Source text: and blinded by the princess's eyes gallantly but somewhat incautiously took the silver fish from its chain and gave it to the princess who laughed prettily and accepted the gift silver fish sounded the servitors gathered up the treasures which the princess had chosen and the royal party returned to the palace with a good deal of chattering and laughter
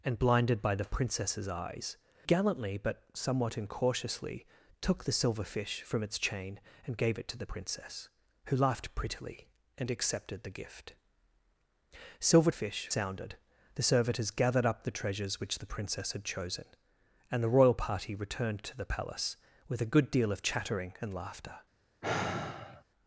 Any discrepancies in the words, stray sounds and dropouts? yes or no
yes